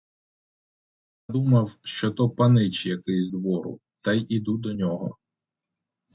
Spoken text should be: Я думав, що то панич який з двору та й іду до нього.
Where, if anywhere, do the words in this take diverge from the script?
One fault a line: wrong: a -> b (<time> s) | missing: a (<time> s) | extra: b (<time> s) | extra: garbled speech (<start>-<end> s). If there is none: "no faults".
no faults